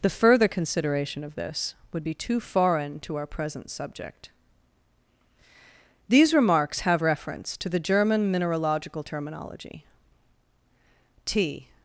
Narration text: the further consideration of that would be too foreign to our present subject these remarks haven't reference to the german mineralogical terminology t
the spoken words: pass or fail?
fail